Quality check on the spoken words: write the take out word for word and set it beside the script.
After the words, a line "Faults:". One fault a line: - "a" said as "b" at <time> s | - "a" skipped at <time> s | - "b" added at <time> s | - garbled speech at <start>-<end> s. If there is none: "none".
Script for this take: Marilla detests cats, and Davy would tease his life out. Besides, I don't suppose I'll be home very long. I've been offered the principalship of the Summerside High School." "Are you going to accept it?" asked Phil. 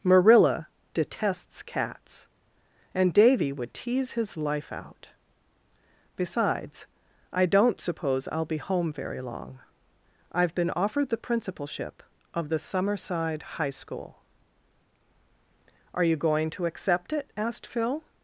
Marilla detests cats, and Davy would tease his life out. Besides, I don't suppose I'll be home very long. I've been offered the principalship of the Summerside High School." "Are you going to accept it?" asked Phil.
Faults:
none